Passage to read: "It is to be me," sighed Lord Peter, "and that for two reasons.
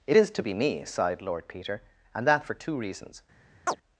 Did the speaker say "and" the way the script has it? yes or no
yes